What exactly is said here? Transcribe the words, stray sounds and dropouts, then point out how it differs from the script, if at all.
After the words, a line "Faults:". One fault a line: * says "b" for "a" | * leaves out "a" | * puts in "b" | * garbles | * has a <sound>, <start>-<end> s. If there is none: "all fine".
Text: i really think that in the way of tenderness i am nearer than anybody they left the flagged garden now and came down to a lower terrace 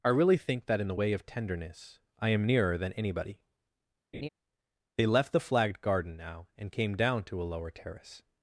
i really think that in the way of tenderness i am nearer than anybody they left the flagged garden now and came down to a lower terrace
Faults:
* has a laugh, 4.1-4.3 s